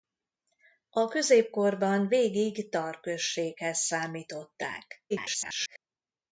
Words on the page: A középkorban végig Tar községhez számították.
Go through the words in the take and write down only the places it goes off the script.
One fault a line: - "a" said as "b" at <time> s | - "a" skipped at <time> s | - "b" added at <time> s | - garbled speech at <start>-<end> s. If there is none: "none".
- garbled speech at 5.1-5.8 s